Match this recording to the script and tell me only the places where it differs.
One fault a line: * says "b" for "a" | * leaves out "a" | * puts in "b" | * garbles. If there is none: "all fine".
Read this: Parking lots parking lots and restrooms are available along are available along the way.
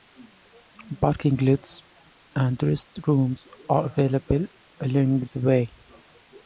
* leaves out "parking lots"
* leaves out "are available along"